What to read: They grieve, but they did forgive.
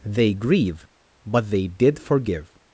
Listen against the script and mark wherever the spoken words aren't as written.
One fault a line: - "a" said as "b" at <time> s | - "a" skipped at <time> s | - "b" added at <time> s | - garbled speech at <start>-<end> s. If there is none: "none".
none